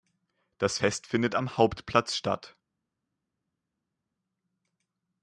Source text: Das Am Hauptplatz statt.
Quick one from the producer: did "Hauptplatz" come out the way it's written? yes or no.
yes